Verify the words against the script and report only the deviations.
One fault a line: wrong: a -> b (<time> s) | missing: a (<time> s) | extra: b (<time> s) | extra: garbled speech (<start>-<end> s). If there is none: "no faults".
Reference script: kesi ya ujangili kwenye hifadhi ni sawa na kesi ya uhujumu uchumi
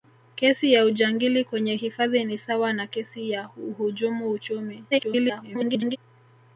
extra: garbled speech (4.9-6.0 s)